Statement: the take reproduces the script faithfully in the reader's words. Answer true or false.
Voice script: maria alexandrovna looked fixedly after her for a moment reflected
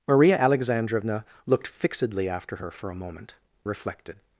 true